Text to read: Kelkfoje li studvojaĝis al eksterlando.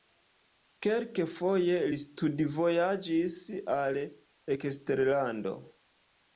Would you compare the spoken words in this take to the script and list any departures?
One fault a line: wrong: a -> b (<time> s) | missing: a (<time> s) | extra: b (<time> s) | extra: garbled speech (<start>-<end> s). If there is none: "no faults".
no faults